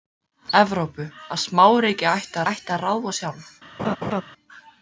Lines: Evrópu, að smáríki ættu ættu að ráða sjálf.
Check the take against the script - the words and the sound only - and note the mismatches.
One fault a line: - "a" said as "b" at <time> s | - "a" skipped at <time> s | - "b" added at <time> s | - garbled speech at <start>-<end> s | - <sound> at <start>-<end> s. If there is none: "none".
- laugh at 3.8-4.2 s